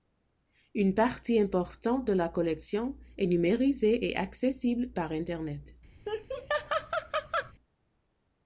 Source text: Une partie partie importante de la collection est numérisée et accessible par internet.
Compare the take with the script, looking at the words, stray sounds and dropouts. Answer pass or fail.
fail